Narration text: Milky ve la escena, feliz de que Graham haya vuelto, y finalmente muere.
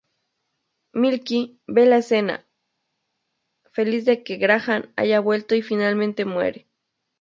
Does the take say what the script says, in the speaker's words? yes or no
yes